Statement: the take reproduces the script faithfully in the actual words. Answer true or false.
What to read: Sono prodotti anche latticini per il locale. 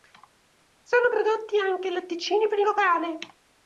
true